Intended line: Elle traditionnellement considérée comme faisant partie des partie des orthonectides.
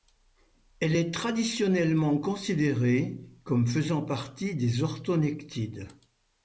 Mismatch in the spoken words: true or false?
true